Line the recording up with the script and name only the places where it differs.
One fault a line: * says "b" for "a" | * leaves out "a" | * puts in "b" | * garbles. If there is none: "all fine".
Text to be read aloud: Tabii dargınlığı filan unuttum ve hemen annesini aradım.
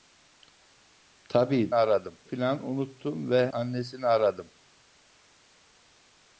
* says "aradım" for "dargınlığı"
* leaves out "hemen"